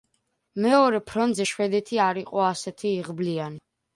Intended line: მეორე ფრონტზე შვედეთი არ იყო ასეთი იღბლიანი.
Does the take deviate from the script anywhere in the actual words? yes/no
no